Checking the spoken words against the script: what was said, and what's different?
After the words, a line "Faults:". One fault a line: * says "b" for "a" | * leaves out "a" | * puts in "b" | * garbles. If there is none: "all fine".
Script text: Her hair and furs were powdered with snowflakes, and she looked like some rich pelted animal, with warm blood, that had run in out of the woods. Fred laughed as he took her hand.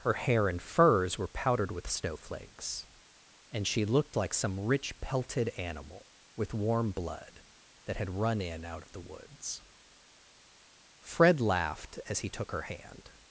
Her hair and furs were powdered with snowflakes, and she looked like some rich pelted animal, with warm blood, that had run in out of the woods. Fred laughed as he took her hand.
Faults:
all fine